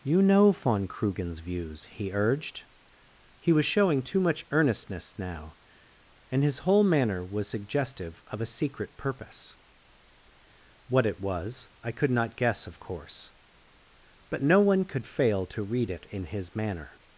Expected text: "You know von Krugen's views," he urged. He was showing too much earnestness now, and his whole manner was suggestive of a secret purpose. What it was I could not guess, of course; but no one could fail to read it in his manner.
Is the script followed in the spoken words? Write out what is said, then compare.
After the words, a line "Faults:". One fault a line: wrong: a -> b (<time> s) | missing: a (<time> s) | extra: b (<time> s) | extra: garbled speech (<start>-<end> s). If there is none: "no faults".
"You know von Krugen's views," he urged. He was showing too much earnestness now, and his whole manner was suggestive of a secret purpose. What it was I could not guess, of course; but no one could fail to read it in his manner.
Faults:
no faults